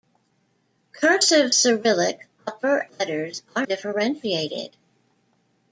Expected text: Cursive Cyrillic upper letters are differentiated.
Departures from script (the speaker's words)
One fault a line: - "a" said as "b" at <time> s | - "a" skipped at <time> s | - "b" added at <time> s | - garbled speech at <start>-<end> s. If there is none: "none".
none